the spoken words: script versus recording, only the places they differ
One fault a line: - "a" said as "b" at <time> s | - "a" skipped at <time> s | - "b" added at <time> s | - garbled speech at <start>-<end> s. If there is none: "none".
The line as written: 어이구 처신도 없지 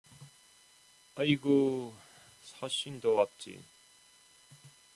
none